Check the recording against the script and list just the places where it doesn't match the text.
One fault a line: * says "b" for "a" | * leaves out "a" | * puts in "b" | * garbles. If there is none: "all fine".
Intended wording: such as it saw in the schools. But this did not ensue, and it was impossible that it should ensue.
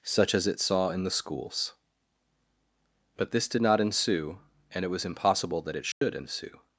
all fine